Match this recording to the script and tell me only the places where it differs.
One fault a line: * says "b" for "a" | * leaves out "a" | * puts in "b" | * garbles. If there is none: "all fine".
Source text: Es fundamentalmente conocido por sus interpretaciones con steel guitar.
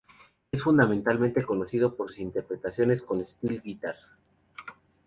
all fine